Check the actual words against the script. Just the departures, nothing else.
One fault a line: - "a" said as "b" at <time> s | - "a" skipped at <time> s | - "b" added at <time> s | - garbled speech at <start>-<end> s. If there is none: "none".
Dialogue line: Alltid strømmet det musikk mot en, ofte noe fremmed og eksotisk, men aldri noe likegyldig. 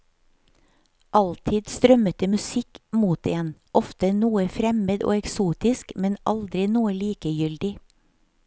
none